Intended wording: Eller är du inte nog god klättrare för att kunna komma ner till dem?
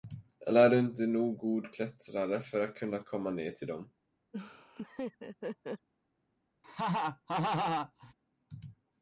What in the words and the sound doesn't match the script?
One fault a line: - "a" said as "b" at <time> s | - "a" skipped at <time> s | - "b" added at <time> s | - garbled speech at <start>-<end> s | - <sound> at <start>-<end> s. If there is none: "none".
- laugh at 4.3-5.9 s
- laugh at 6.6-8.1 s